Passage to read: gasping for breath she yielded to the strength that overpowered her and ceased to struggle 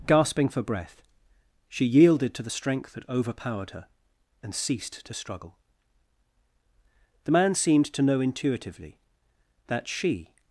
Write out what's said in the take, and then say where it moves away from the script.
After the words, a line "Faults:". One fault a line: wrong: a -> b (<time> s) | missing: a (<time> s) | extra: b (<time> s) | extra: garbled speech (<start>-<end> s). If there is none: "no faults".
gasping for breath she yielded to the strength that overpowered her and ceased to struggle the man seemed to know intuitively that she
Faults:
extra: the man seemed to know intuitively that she (7.3 s)